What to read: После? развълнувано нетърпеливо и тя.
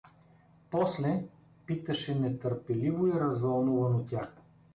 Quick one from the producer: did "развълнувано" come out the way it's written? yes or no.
no